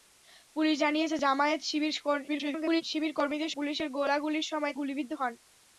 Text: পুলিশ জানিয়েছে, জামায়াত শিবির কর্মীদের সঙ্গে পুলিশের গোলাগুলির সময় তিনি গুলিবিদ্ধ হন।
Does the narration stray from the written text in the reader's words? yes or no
yes